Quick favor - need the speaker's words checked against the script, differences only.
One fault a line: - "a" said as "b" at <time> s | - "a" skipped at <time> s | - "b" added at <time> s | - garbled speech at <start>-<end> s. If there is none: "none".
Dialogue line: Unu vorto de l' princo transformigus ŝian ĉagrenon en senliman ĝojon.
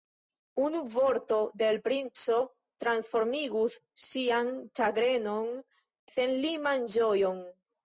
- "en" skipped at 5.5 s